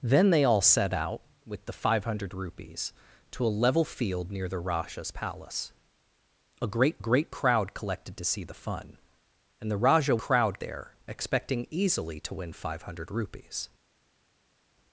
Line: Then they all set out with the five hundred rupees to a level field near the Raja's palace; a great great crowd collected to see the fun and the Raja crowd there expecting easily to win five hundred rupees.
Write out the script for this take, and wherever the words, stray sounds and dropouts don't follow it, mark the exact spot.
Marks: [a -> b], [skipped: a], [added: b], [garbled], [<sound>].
Then they all set out with the five hundred rupees to a level field near the Raja's palace; a great great crowd collected to see the fun and the Raja crowd there expecting easily to win five hundred rupees.